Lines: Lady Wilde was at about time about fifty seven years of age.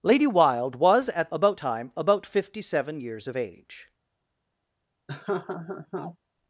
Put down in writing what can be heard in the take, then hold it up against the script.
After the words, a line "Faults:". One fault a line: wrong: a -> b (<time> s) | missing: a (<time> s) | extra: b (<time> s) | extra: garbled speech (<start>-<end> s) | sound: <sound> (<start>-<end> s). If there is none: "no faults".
Lady Wilde was at about time about fifty seven years of age.
Faults:
sound: laugh (5.1-6.2 s)